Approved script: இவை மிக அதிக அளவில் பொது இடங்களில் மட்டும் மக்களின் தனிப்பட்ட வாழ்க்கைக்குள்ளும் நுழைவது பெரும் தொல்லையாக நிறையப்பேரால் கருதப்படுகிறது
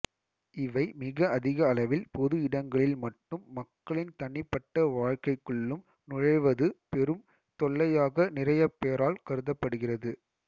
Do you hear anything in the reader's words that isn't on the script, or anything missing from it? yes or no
no